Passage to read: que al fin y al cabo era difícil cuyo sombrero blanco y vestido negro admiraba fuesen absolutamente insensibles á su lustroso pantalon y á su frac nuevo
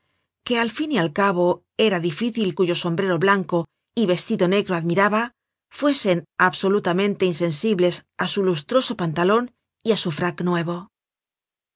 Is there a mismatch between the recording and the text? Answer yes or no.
no